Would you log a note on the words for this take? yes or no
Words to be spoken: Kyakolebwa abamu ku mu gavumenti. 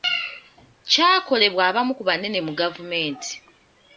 yes